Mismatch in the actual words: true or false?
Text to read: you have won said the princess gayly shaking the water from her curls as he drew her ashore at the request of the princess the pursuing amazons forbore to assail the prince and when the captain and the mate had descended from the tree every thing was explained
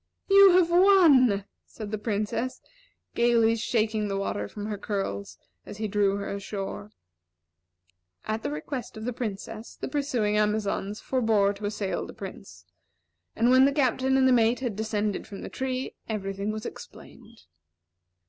false